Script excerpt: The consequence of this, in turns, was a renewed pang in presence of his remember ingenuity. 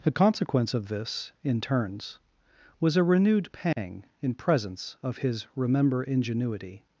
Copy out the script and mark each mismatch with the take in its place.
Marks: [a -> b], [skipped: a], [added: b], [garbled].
The consequence of this, in turns, was a renewed pang in presence of his remember ingenuity.